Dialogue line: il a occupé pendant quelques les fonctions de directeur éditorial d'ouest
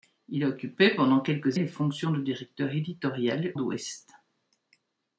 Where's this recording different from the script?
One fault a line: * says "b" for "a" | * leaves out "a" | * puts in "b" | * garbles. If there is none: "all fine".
all fine